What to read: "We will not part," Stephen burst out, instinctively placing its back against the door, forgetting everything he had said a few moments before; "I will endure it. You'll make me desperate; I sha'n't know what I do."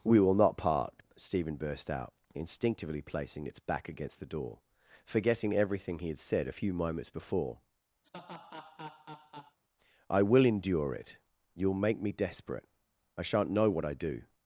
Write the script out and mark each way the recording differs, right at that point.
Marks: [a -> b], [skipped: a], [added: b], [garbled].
"We will not part," Stephen burst out, instinctively placing its back against the door, forgetting everything he had said a few moments before; "I will endure it. You'll make me desperate; I sha'n't know what I do."